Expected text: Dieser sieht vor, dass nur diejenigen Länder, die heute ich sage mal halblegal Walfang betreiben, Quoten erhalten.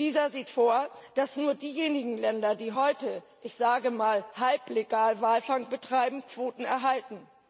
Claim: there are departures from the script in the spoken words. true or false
false